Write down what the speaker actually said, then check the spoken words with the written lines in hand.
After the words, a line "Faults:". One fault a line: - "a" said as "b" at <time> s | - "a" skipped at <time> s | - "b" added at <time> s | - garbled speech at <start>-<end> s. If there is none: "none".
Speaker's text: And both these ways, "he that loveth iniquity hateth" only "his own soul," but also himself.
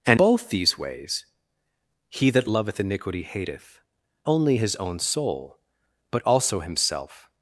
And both these ways, "he that loveth iniquity hateth" only "his own soul," but also himself.
Faults:
none